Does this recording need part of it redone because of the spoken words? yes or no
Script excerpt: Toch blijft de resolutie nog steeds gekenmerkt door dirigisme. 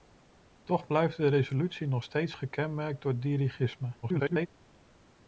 yes